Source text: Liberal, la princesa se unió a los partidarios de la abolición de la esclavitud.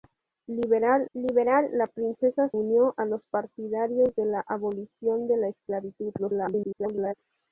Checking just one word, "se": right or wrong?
wrong